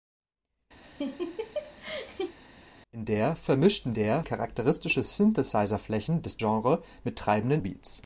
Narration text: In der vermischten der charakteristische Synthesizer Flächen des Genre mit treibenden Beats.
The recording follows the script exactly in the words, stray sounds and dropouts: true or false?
false